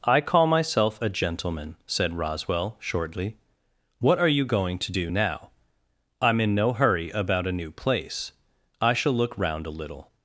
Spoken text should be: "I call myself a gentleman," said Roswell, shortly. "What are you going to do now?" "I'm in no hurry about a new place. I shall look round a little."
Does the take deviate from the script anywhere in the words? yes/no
no